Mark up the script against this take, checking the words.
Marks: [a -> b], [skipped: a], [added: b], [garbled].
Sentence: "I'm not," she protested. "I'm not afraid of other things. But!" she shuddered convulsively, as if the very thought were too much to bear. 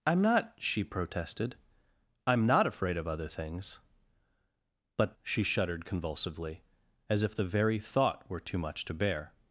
"I'm not," she protested. "I'm not afraid of other things. But!" she shuddered convulsively, as if the very thought were too much to bear.